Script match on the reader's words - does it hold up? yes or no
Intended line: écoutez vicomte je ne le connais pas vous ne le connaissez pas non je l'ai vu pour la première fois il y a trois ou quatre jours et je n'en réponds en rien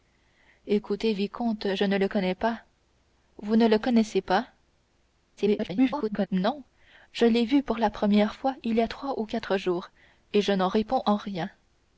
no